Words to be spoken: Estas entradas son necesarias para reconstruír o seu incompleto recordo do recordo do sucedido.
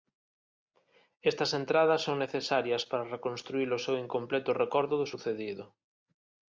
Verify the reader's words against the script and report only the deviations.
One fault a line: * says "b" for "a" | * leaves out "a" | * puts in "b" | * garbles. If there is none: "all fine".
* leaves out "recordo do"